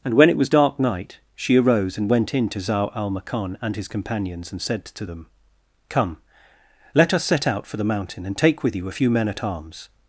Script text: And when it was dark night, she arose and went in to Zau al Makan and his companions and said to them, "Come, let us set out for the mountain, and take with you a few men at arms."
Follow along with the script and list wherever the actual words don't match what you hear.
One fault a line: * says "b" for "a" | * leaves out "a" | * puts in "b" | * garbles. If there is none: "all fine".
all fine